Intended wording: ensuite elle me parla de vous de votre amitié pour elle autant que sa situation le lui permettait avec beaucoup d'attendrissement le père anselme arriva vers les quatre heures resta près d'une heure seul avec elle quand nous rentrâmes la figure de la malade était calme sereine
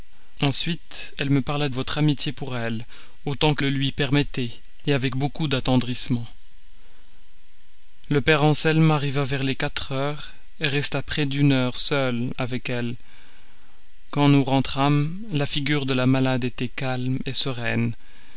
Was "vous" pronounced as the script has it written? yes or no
no